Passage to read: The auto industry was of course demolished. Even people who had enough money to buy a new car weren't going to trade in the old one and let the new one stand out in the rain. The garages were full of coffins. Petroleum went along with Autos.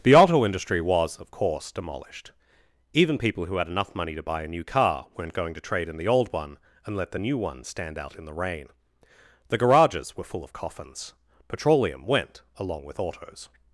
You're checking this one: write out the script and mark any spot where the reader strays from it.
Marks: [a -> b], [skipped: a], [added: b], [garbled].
The auto industry was of course demolished. Even people who had enough money to buy a new car weren't going to trade in the old one and let the new one stand out in the rain. The garages were full of coffins. Petroleum went along with Autos.